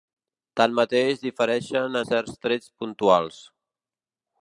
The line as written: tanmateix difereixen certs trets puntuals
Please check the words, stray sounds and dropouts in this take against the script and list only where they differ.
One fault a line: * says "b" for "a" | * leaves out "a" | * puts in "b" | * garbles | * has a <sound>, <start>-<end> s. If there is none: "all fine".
all fine